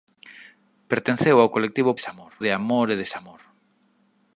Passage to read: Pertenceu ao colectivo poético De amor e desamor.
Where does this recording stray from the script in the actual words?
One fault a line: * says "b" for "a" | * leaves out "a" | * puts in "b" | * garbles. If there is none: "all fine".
* says "desamor" for "poético"